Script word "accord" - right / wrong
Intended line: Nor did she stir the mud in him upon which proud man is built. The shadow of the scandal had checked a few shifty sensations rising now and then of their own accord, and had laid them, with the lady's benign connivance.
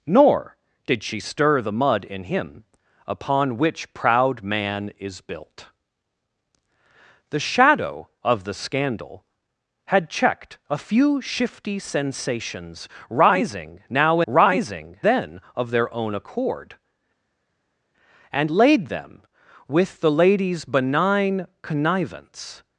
right